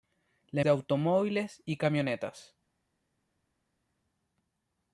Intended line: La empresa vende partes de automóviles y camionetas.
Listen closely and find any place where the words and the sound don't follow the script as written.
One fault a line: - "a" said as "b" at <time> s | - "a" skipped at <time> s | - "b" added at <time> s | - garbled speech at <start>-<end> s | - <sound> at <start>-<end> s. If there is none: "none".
- "empresa vende partes" skipped at 0.6 s